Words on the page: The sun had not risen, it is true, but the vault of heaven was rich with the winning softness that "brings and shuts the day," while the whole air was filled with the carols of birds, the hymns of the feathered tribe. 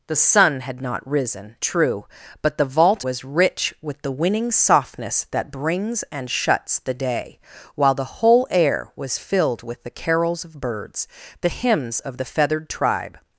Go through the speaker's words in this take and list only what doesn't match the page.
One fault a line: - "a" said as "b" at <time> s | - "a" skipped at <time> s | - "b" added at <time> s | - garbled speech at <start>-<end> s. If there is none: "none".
- "it is" skipped at 1.6 s
- "of heaven" skipped at 3.0 s